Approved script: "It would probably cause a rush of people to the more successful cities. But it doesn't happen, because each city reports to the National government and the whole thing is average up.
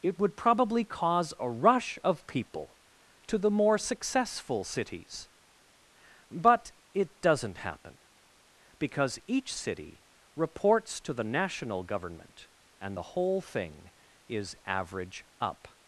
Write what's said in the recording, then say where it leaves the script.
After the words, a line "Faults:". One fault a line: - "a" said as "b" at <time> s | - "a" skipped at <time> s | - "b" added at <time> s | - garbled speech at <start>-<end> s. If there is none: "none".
"It would probably cause a rush of people to the more successful cities. But it doesn't happen, because each city reports to the National government and the whole thing is average up.
Faults:
none